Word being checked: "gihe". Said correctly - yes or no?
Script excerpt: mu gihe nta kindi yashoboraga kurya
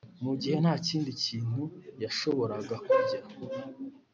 yes